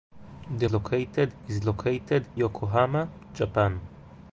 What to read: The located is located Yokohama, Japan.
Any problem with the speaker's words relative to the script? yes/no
no